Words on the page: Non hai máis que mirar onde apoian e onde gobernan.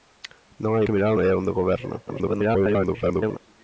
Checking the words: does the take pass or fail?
fail